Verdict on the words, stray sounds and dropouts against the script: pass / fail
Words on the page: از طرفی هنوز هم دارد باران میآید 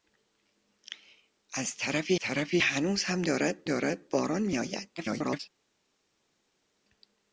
fail